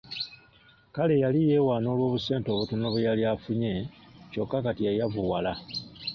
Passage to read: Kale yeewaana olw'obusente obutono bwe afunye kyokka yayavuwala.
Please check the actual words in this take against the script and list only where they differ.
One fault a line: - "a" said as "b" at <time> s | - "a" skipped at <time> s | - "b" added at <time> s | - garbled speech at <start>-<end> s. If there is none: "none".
- "yali" added at 1.2 s
- "yali" added at 3.1 s
- "kati" added at 4.7 s